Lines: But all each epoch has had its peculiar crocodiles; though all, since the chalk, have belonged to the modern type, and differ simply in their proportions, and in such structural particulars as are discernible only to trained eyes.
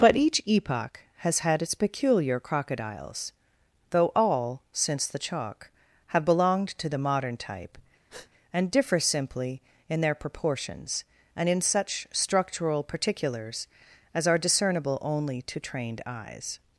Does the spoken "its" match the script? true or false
true